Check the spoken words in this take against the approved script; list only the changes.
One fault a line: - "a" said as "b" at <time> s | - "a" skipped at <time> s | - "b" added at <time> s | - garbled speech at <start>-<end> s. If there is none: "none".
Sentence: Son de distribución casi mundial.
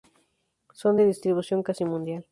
none